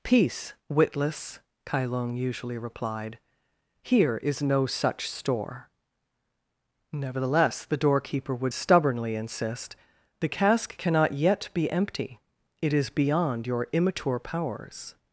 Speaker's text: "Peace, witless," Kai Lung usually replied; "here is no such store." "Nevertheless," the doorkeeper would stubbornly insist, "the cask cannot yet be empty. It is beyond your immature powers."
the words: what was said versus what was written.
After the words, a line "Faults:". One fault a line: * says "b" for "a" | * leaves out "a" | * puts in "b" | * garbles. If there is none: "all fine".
"Peace, witless," Kai Lung usually replied; "here is no such store." "Nevertheless," the doorkeeper would stubbornly insist, "the cask cannot yet be empty. It is beyond your immature powers."
Faults:
all fine